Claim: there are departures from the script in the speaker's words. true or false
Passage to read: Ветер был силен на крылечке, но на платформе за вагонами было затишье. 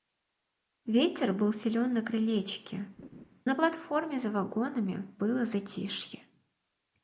true